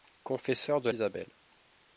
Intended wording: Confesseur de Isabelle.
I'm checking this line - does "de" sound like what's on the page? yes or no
yes